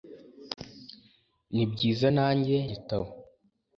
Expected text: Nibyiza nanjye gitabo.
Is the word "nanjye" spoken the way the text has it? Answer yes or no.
yes